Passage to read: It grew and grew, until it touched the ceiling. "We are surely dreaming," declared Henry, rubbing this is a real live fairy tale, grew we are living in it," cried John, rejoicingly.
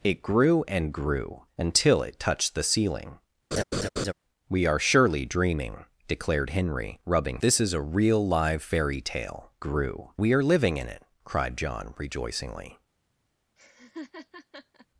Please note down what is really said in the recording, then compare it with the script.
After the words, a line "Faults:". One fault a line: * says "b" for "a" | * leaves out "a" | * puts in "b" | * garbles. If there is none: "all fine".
It grew and grew, until it touched the ceiling. "We are surely dreaming," declared Henry, rubbing this is a real live fairy tale, grew we are living in it," cried John, rejoicingly.
Faults:
all fine